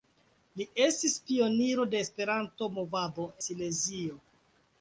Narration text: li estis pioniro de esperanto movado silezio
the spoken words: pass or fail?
pass